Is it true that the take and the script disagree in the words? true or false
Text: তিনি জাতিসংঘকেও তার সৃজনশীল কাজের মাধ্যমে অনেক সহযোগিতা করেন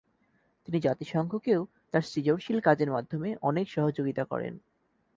false